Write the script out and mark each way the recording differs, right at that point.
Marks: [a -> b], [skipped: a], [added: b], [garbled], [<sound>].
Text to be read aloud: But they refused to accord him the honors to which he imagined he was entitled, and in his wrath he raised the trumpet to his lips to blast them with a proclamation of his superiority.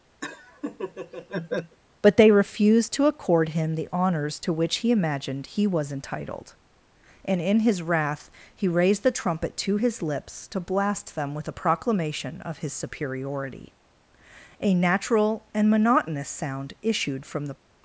[laugh] But they refused to accord him the honors to which he imagined he was entitled, and in his wrath he raised the trumpet to his lips to blast them with a proclamation of his superiority. [added: A natural and monotonous sound issued from the]